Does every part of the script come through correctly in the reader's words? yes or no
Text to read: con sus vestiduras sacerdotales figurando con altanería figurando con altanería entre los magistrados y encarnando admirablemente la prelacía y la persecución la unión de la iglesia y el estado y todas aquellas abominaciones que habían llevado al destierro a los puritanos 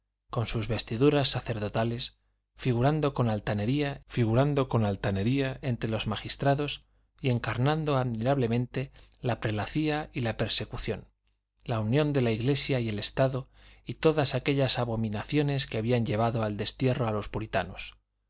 yes